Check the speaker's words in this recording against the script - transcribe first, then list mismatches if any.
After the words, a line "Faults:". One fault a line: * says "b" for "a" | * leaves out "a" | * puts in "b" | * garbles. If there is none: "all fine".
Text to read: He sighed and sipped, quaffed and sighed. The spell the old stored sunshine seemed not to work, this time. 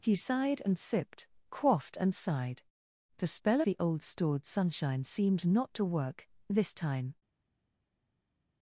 He sighed and sipped, quaffed and sighed. The spell the old stored sunshine seemed not to work, this time.
Faults:
all fine